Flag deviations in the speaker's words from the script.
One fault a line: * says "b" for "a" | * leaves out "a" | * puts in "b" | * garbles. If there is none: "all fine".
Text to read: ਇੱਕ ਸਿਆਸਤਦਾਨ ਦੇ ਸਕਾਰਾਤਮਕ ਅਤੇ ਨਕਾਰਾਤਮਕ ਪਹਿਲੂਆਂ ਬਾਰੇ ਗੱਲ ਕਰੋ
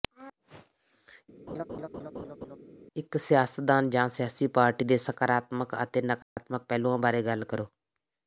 * puts in "ਜਾਂ ਸਿਆਸੀ ਪਾਰਟੀ"